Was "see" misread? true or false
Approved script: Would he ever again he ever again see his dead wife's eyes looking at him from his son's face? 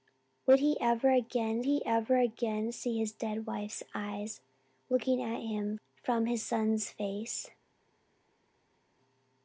false